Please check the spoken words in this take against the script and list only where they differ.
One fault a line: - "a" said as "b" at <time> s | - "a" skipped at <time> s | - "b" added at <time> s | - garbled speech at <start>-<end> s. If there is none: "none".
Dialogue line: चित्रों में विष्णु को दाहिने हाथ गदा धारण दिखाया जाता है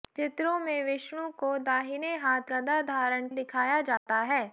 none